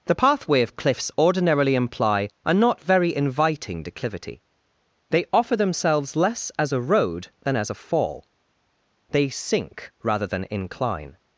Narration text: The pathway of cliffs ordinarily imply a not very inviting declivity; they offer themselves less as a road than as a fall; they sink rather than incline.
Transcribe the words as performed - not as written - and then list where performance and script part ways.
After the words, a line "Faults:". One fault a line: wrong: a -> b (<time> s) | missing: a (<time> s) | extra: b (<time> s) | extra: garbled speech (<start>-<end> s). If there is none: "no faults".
The pathway of cliffs ordinarily imply a not very inviting declivity; they offer themselves less as a road than as a fall; they sink rather than incline.
Faults:
no faults